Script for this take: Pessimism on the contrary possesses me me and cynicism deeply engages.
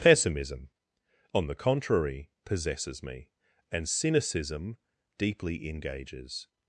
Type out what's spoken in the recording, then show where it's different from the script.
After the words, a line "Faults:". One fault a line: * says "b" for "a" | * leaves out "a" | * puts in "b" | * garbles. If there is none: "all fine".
Pessimism on the contrary possesses me and cynicism deeply engages.
Faults:
* leaves out "me"